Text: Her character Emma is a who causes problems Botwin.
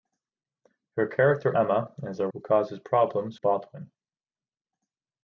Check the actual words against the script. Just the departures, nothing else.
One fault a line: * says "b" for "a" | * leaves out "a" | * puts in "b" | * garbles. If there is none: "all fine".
all fine